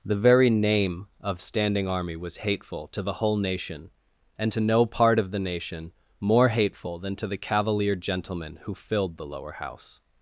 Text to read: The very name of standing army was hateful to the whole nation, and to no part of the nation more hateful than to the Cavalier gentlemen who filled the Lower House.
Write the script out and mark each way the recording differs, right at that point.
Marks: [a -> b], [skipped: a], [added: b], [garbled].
The very name of standing army was hateful to the whole nation, and to no part of the nation more hateful than to the Cavalier gentlemen who filled the Lower House.